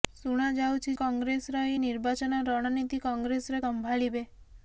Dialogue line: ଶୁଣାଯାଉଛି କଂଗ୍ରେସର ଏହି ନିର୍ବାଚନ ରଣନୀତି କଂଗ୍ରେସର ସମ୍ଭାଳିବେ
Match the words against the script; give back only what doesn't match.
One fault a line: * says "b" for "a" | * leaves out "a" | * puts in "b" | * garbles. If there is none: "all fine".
all fine